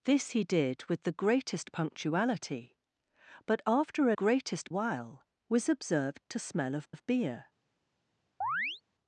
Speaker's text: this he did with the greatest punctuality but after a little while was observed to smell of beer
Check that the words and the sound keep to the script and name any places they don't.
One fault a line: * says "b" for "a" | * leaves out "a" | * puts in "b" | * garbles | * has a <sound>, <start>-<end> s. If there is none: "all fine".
* says "greatest" for "little"
* puts in "of"
* has a chirp, 8.4-8.8 s